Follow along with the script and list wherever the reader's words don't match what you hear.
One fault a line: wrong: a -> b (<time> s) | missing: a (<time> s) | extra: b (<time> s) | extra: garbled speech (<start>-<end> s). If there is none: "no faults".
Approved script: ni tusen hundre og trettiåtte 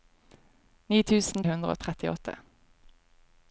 no faults